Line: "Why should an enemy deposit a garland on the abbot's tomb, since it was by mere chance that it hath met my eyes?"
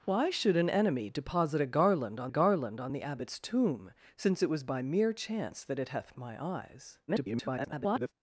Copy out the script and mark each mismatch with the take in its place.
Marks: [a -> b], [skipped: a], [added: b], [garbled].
"Why should an enemy deposit a garland on [added: garland on] the abbot's tomb, since it was by mere chance that it hath [skipped: met] my eyes?" [garbled]